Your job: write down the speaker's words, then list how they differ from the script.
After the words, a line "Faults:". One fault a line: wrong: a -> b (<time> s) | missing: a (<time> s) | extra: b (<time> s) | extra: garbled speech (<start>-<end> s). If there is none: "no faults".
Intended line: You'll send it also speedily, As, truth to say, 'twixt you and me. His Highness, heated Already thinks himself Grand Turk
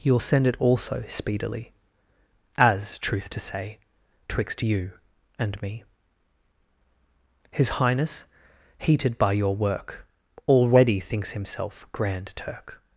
You'll send it also speedily, As, truth to say, 'twixt you and me. His Highness, heated by your work, Already thinks himself Grand Turk
Faults:
extra: by your work (9.2 s)